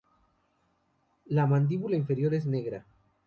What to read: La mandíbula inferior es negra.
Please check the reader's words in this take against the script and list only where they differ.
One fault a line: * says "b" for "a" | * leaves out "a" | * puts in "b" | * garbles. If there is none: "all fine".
all fine